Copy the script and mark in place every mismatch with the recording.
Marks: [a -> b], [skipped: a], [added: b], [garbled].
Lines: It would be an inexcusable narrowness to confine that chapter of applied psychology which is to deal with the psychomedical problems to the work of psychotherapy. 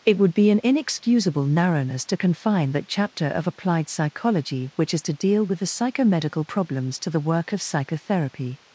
It would be an inexcusable narrowness to confine that chapter of applied psychology which is to deal with the psychomedical problems to the work of psychotherapy.